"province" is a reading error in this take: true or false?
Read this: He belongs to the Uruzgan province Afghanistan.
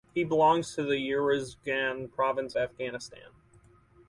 false